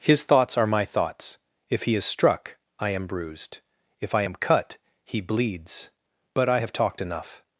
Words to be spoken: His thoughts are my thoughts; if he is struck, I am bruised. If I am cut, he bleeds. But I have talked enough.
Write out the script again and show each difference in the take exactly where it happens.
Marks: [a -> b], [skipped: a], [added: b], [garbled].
His thoughts are my thoughts; if he is struck, I am bruised. If I am cut, he bleeds. But I have talked enough.